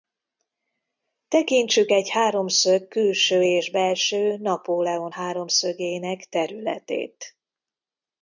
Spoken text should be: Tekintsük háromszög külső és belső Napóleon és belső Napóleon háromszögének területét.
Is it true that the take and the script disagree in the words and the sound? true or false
true